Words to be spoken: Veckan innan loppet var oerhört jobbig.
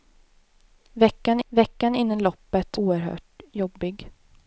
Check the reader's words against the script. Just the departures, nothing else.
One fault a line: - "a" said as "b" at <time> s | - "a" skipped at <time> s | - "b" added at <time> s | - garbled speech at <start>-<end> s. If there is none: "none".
- "veckan" added at 1.5 s
- "var" skipped at 2.8 s